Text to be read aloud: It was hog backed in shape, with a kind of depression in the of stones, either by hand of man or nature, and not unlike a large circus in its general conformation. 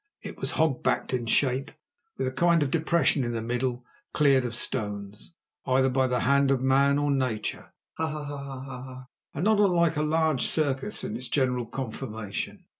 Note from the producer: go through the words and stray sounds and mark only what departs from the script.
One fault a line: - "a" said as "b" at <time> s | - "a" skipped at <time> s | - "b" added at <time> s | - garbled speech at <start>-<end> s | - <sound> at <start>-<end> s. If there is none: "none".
- "middle cleared" added at 3.4 s
- "the" added at 6.1 s
- laugh at 8.0-9.1 s